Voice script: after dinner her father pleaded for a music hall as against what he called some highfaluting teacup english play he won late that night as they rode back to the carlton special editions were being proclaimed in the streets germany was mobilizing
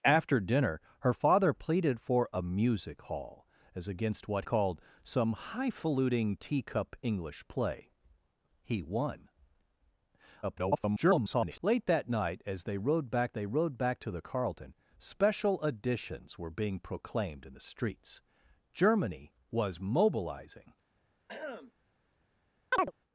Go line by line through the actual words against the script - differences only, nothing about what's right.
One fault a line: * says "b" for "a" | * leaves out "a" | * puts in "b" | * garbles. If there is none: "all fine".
* leaves out "he"
* garbles
* puts in "they rode back"